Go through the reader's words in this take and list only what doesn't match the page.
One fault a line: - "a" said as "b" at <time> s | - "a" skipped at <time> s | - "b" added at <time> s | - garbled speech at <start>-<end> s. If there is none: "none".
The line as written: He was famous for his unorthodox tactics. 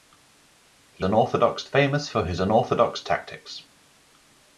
- "was" said as "unorthodox" at 1.0 s